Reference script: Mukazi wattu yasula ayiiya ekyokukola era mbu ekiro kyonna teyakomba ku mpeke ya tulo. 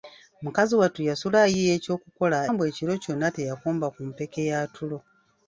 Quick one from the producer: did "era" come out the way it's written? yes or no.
no